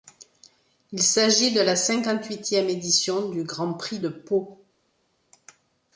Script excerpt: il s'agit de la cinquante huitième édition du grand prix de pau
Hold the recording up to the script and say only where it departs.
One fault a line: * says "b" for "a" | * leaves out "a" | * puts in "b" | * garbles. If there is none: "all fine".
all fine